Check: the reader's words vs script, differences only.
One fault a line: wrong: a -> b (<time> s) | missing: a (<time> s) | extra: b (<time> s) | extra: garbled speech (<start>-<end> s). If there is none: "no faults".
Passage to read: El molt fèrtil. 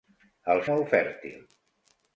no faults